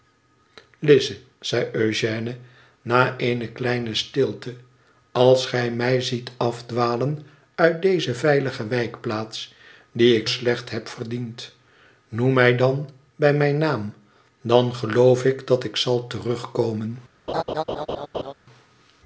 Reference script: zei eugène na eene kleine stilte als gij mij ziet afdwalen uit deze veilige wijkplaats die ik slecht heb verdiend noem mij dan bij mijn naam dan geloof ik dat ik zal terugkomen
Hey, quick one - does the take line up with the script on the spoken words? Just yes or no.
yes